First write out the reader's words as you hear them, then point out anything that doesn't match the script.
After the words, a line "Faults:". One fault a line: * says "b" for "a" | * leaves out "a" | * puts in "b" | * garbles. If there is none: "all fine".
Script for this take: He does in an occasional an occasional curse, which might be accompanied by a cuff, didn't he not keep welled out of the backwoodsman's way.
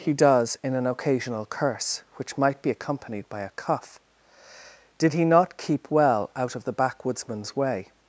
He does in an occasional curse, which might be accompanied by a cuff, did he not keep well out of the backwoodsman's way.
Faults:
* leaves out "an occasional"
* says "did" for "didn't"
* says "well" for "welled"